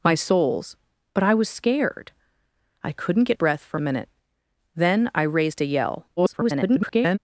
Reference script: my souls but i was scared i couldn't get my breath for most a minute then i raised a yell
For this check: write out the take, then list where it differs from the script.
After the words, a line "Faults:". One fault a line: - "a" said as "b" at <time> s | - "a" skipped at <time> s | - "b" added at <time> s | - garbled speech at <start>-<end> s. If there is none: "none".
my souls but i was scared i couldn't get breath for a minute then i raised a yell [garbled]
Faults:
- "my" skipped at 3.4 s
- "most" skipped at 3.8 s
- garbled speech at 6.2-7.2 s